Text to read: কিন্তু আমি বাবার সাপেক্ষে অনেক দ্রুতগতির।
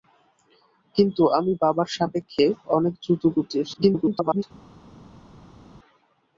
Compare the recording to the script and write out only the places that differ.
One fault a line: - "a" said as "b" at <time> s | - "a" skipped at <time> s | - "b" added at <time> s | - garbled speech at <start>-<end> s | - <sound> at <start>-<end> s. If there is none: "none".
- garbled speech at 3.7-4.4 s